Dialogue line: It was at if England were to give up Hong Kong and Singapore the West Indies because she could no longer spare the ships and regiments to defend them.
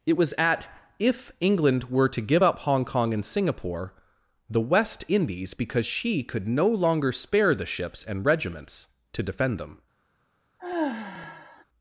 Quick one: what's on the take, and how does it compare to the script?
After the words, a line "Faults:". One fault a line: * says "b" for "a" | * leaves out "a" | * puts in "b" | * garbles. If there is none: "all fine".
It was at if England were to give up Hong Kong and Singapore the West Indies because she could no longer spare the ships and regiments to defend them.
Faults:
all fine